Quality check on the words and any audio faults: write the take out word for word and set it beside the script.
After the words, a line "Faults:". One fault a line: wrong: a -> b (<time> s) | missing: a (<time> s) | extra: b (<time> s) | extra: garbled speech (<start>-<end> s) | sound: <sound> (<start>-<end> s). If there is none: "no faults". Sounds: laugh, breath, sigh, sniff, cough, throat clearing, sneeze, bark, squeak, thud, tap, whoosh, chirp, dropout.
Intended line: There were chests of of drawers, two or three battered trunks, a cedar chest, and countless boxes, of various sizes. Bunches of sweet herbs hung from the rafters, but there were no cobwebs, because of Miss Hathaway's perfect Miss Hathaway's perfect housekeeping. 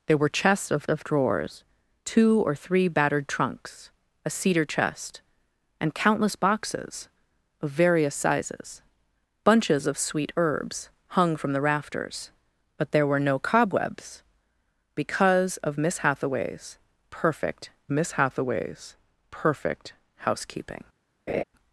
There were chests of of drawers, two or three battered trunks, a cedar chest, and countless boxes, of various sizes. Bunches of sweet herbs hung from the rafters, but there were no cobwebs, because of Miss Hathaway's perfect Miss Hathaway's perfect housekeeping.
Faults:
sound: laugh (21.3-21.4 s)